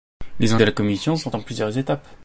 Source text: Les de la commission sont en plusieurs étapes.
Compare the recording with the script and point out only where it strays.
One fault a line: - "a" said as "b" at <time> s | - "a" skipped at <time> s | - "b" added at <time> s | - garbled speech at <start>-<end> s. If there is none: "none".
none